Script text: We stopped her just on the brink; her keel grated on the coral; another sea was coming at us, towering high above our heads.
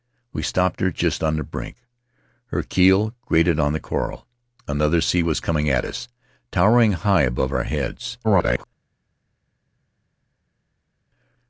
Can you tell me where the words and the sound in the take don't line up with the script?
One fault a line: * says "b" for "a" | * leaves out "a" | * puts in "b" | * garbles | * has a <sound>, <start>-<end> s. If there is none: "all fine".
* garbles